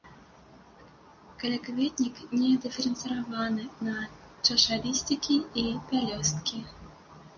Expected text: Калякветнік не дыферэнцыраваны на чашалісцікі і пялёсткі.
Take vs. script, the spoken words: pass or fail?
pass